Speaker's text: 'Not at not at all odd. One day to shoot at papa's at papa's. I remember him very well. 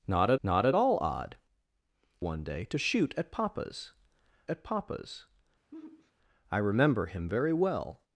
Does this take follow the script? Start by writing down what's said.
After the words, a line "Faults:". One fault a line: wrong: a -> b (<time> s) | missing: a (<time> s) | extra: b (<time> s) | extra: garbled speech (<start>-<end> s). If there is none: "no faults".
'Not at not at all odd. One day to shoot at papa's at papa's. I remember him very well.
Faults:
no faults